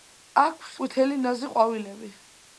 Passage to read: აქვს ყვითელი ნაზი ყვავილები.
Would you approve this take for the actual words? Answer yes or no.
yes